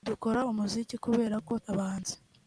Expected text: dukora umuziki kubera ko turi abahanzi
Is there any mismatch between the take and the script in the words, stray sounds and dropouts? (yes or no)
yes